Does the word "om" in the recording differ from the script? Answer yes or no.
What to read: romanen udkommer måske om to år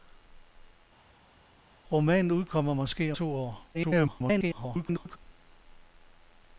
yes